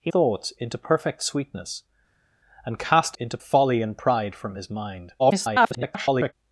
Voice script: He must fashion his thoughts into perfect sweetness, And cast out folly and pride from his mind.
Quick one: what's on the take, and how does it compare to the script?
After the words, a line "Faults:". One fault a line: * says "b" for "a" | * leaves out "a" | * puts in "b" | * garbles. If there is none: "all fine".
He thoughts into perfect sweetness, And cast into folly and pride from his mind. [garbled]
Faults:
* leaves out "must fashion his"
* says "into" for "out"
* garbles